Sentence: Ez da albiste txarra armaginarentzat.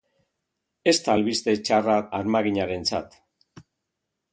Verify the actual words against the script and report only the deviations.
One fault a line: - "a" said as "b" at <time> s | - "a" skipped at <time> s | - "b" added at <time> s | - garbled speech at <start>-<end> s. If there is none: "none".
none